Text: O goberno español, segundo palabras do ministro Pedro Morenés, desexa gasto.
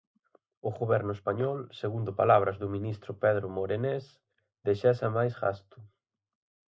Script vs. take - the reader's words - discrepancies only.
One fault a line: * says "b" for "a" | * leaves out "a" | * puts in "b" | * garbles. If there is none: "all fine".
* puts in "máis"